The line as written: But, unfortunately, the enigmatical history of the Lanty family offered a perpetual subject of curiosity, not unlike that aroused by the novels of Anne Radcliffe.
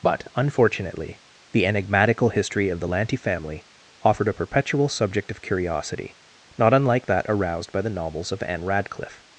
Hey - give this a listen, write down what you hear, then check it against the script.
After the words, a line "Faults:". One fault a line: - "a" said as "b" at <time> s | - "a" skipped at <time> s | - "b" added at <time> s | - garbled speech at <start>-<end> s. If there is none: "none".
But, unfortunately, the enigmatical history of the Lanty family offered a perpetual subject of curiosity, not unlike that aroused by the novels of Anne Radcliffe.
Faults:
none